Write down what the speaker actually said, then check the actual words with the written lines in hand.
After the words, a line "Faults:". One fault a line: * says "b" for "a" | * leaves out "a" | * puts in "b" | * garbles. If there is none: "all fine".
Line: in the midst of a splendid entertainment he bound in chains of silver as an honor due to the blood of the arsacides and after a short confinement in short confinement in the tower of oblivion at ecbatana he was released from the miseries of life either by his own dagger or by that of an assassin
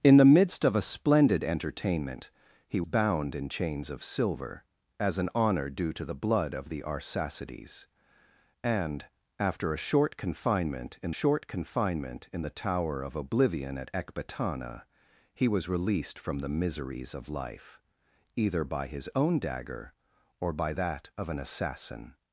in the midst of a splendid entertainment he bound in chains of silver as an honor due to the blood of the arsacides and after a short confinement in short confinement in the tower of oblivion at ecbatana he was released from the miseries of life either by his own dagger or by that of an assassin
Faults:
all fine